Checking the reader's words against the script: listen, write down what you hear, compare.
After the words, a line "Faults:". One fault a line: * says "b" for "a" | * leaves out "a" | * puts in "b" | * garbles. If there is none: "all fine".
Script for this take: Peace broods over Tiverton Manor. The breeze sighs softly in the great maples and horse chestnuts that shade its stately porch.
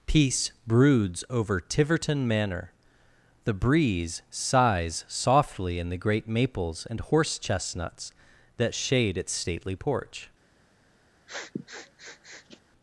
Peace broods over Tiverton Manor. The breeze sighs softly in the great maples and horse chestnuts that shade its stately porch.
Faults:
all fine